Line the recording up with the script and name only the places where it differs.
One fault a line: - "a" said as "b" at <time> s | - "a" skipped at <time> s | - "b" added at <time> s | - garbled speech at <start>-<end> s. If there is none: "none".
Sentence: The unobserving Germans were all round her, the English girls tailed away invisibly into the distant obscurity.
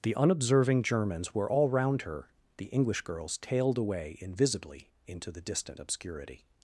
none